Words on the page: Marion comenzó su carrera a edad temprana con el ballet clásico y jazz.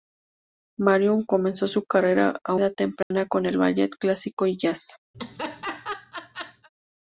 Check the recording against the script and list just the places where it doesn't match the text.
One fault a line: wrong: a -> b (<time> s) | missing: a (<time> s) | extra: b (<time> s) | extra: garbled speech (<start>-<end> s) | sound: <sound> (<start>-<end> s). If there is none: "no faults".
sound: dropout (3.0-3.1 s)
sound: laugh (5.1-6.7 s)